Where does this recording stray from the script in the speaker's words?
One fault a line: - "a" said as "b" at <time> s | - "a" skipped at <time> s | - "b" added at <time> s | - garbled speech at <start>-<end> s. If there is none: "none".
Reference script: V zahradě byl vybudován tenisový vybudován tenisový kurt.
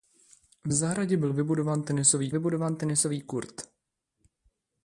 none